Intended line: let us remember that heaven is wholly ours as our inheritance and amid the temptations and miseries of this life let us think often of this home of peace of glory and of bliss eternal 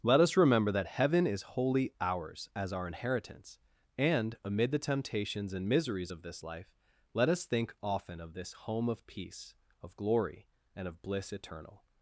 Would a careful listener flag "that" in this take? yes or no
no